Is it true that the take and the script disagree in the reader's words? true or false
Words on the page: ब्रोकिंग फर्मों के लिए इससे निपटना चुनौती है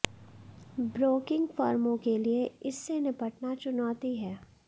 false